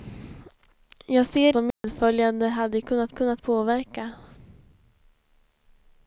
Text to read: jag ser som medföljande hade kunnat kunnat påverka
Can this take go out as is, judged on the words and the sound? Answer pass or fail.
fail